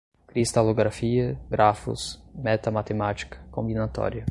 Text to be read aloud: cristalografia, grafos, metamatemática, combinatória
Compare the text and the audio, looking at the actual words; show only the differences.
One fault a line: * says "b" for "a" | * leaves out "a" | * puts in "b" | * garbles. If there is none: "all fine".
all fine